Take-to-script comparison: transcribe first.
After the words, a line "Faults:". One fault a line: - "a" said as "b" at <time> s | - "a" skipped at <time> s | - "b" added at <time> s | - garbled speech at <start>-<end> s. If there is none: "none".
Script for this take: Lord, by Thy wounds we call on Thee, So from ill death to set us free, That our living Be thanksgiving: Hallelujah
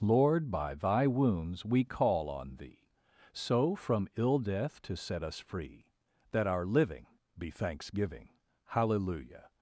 Lord, by Thy wounds we call on Thee, So from ill death to set us free, That our living Be thanksgiving: Hallelujah
Faults:
none